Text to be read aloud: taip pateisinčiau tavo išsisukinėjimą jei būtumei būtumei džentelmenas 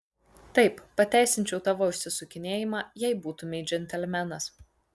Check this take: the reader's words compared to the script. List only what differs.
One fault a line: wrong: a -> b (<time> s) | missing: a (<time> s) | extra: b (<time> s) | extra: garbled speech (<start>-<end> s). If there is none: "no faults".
missing: būtumei (3.6 s)